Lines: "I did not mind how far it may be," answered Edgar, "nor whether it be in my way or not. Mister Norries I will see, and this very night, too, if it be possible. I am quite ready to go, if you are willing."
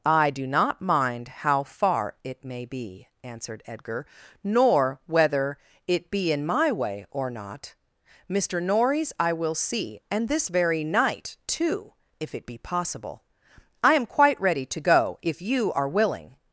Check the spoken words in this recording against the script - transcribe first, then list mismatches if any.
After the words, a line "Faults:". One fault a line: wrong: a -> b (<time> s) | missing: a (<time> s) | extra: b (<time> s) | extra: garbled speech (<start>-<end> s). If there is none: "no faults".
"I do not mind how far it may be," answered Edgar, "nor whether it be in my way or not. Mister Norries I will see, and this very night, too, if it be possible. I am quite ready to go, if you are willing."
Faults:
wrong: did -> do (0.3 s)